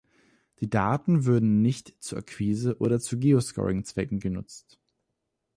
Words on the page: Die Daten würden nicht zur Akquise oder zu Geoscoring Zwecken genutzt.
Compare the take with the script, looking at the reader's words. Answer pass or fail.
pass